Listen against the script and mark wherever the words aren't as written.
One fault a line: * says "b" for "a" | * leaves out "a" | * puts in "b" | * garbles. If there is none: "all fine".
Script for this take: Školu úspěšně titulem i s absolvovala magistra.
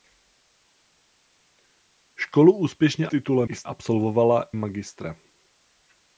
all fine